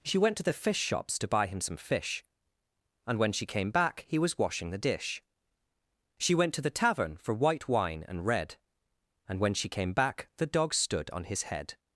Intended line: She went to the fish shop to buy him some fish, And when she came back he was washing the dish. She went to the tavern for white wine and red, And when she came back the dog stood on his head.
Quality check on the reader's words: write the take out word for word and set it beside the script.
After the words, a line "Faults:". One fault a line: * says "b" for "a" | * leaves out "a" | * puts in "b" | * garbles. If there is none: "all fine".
She went to the fish shops to buy him some fish, And when she came back he was washing the dish. She went to the tavern for white wine and red, And when she came back the dog stood on his head.
Faults:
* says "shops" for "shop"